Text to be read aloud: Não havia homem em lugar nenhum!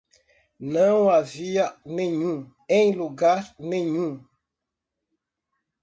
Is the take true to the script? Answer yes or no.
no